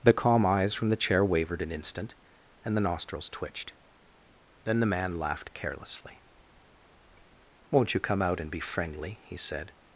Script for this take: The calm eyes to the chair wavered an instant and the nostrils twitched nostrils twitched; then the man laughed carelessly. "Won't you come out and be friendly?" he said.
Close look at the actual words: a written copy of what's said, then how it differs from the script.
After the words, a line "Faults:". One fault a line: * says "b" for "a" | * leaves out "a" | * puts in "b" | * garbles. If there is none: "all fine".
The calm eyes from the chair wavered an instant and the nostrils twitched; then the man laughed carelessly. "Won't you come out and be friendly?" he said.
Faults:
* says "from" for "to"
* leaves out "nostrils twitched"